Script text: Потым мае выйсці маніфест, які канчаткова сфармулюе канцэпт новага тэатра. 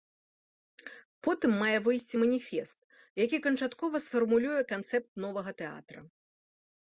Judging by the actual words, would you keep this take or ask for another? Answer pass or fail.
pass